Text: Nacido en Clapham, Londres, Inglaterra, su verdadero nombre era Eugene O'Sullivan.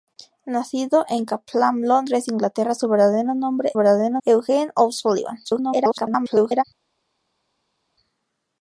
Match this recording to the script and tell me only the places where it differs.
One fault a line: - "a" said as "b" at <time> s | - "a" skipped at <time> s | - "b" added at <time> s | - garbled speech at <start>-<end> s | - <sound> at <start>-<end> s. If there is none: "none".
- "era" said as "verdadero" at 3.8 s
- garbled speech at 5.4-6.6 s